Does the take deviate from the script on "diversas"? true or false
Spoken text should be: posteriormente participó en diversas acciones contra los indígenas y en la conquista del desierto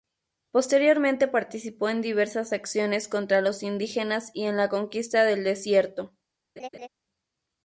false